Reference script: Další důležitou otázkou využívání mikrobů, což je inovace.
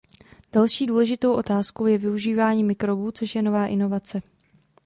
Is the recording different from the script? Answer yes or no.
yes